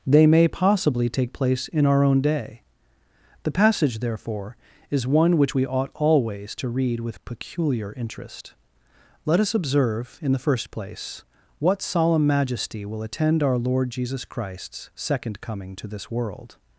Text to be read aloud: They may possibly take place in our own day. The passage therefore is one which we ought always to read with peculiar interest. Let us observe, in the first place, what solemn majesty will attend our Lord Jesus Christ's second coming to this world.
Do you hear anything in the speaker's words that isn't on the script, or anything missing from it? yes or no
no